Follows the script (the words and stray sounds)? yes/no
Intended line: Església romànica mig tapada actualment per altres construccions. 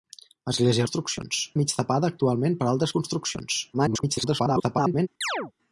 no